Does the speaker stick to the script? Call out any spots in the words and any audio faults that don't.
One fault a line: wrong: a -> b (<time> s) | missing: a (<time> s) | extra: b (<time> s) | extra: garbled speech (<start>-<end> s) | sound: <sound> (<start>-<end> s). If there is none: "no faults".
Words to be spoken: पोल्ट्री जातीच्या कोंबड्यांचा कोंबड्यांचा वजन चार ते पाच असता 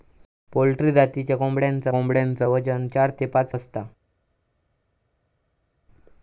no faults